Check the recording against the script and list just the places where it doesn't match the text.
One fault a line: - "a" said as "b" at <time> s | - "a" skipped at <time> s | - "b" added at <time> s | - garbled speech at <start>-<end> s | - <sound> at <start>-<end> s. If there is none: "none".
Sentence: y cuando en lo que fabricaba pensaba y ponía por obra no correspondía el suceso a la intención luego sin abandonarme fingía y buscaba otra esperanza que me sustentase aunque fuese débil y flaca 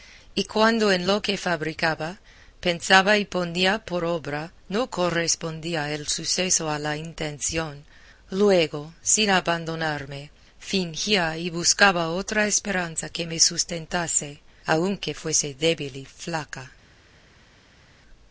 none